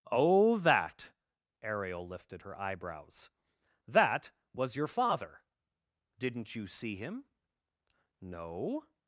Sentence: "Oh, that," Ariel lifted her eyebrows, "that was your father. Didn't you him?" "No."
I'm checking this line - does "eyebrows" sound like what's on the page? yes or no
yes